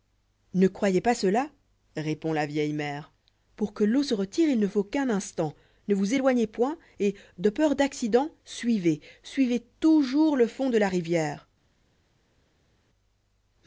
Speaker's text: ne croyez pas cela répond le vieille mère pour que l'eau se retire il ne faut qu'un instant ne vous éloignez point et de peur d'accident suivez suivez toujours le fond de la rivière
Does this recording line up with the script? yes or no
no